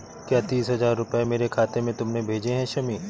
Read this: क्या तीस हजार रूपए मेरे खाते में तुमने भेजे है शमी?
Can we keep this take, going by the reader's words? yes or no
yes